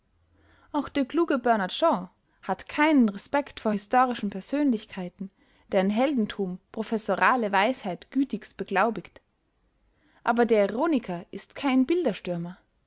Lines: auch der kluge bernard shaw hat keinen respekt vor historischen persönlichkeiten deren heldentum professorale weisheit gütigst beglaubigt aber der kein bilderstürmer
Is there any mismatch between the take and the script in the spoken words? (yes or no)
yes